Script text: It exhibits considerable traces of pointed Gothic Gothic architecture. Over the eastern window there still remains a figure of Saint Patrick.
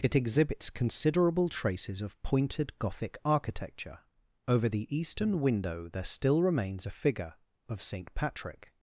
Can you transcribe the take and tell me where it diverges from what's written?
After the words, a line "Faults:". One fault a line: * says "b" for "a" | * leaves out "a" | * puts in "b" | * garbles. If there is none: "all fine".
It exhibits considerable traces of pointed Gothic architecture. Over the eastern window there still remains a figure of Saint Patrick.
Faults:
* leaves out "Gothic"